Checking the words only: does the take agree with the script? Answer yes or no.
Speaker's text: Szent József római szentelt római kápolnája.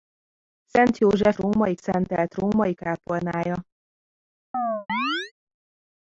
yes